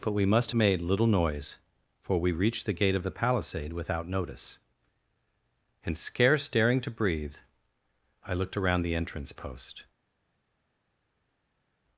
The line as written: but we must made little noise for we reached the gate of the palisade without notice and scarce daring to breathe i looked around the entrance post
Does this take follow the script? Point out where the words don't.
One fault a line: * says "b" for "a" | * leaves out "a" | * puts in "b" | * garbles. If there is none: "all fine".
all fine